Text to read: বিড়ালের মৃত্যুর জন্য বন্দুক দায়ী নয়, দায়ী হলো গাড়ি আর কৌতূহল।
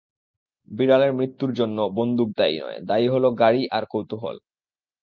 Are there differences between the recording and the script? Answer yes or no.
no